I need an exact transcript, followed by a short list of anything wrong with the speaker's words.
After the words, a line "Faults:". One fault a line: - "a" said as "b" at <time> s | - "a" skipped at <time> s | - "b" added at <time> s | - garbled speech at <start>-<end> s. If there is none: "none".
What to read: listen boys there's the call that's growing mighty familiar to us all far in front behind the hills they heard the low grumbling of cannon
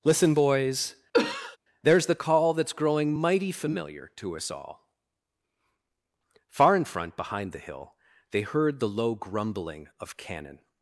listen boys there's the call that's growing mighty familiar to us all far in front behind the hill they heard the low grumbling of cannon
Faults:
- "hills" said as "hill" at 7.6 s